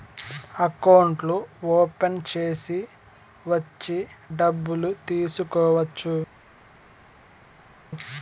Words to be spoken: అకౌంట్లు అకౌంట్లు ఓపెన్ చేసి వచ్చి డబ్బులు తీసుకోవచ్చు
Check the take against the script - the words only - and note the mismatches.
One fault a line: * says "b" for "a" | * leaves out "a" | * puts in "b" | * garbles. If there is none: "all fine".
* leaves out "అకౌంట్లు"